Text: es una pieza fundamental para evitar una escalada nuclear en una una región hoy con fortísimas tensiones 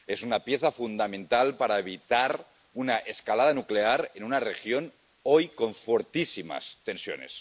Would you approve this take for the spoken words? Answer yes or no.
no